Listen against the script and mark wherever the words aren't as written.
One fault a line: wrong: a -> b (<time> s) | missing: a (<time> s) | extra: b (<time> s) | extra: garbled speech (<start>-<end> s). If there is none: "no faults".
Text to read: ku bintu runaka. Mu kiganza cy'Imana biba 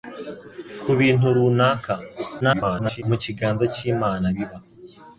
extra: garbled speech (2.4-3.0 s)